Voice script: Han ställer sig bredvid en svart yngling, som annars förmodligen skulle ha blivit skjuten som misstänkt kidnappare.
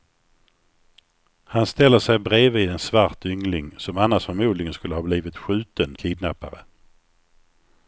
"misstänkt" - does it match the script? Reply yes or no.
no